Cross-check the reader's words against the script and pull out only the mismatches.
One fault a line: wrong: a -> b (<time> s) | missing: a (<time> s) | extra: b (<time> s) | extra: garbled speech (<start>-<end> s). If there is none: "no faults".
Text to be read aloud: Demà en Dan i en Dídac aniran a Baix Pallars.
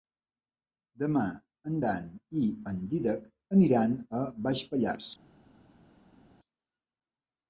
no faults